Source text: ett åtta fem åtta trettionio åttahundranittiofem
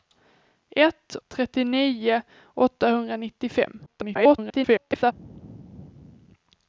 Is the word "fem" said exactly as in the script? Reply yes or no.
no